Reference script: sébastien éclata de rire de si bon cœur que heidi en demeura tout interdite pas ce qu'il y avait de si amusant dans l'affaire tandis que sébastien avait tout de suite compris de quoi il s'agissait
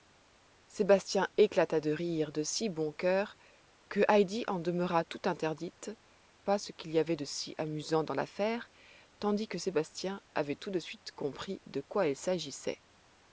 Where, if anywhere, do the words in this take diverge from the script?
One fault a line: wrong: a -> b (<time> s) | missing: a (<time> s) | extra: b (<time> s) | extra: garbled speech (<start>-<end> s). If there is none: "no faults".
no faults